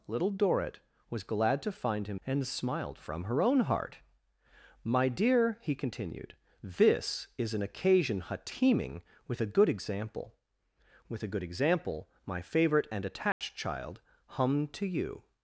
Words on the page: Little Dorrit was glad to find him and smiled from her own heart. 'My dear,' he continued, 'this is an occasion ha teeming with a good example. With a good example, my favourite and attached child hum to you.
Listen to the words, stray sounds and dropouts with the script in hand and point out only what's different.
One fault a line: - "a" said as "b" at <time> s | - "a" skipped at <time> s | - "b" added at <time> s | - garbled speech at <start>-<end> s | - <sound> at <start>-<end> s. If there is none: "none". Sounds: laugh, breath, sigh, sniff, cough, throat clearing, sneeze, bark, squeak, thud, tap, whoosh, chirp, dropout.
- dropout at 13.3-13.4 s